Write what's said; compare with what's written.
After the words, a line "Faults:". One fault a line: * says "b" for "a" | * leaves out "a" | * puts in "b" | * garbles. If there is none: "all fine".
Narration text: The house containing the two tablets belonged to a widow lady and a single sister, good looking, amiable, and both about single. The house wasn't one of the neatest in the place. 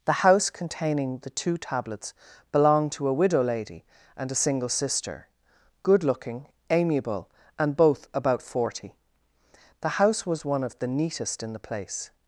The house containing the two tablets belonged to a widow lady and a single sister, good looking, amiable, and both about forty. The house was one of the neatest in the place.
Faults:
* says "forty" for "single"
* says "was" for "wasn't"